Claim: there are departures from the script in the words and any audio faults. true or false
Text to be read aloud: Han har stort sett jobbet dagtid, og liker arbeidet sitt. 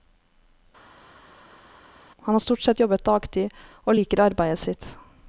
false